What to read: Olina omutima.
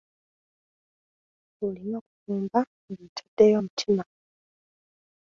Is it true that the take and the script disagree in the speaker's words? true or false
true